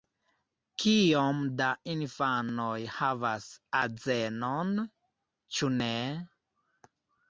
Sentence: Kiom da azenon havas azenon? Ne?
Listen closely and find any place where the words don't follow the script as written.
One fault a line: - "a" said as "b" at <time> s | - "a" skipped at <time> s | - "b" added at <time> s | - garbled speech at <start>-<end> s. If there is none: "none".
- "azenon" said as "infanoj" at 2.0 s
- "Ĉu" added at 5.6 s